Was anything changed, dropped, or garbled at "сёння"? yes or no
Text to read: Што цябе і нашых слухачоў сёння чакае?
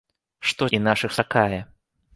yes